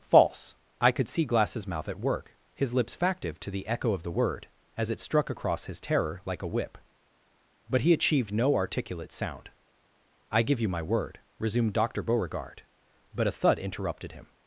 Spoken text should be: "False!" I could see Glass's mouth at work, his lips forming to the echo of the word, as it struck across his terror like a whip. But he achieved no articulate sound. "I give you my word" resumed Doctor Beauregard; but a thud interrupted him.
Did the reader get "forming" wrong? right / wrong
wrong